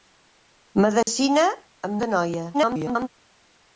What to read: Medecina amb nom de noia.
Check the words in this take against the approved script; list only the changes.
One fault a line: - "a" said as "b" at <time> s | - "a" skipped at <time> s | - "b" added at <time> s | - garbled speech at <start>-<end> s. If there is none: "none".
- "nom" skipped at 2.0 s
- garbled speech at 2.5-3.1 s